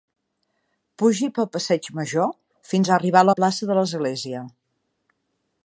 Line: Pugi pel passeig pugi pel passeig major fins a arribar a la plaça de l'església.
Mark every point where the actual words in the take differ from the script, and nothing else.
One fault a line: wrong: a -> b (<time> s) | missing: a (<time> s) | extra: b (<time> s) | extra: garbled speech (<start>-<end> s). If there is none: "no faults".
missing: pugi pel passeig (1.9 s)